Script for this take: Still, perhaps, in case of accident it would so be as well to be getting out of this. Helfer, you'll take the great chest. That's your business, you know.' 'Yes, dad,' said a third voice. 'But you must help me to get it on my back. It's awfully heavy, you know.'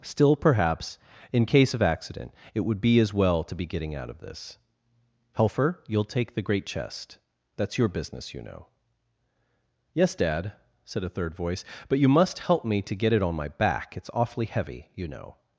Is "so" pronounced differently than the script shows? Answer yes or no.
yes